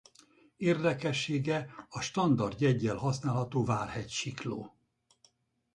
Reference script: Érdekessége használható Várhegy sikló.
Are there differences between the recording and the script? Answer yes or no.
yes